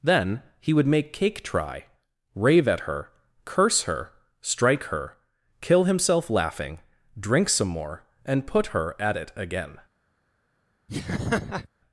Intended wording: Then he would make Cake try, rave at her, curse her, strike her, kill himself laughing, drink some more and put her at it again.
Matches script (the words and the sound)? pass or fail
fail